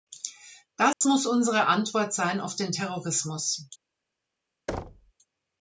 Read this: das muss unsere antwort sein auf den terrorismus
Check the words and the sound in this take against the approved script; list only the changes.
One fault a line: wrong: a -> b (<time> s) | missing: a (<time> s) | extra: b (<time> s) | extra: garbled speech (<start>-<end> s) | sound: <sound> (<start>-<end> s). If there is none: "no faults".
sound: dropout (0.9-1.0 s)
sound: thud (4.7-5.1 s)